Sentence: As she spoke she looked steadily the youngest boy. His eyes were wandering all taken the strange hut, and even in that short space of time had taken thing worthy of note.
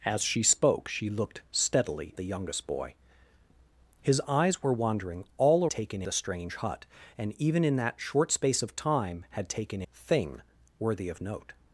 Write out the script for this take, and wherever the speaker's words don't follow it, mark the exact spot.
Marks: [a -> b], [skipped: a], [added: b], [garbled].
As she spoke she looked steadily the youngest boy. His eyes were wandering all taken the strange hut, and even in that short space of time had taken thing worthy of note.